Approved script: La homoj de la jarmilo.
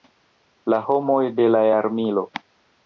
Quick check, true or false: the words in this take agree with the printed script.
true